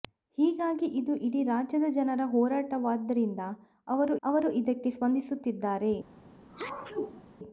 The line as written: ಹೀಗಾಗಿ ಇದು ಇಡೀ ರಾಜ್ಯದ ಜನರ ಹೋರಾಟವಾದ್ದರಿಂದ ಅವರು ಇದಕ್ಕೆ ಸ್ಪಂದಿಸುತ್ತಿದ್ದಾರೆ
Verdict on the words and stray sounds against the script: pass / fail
fail